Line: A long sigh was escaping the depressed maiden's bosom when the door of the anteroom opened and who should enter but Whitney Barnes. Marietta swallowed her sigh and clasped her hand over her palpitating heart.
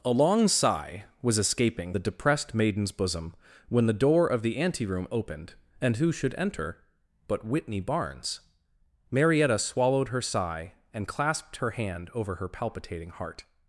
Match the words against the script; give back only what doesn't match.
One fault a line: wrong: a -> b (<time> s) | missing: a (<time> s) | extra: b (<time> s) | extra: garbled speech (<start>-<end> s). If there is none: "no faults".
no faults